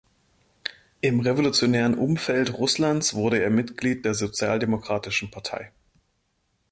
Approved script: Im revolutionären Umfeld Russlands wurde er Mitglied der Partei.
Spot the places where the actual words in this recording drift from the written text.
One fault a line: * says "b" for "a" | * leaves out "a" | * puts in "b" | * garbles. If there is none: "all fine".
* puts in "sozialdemokratischen"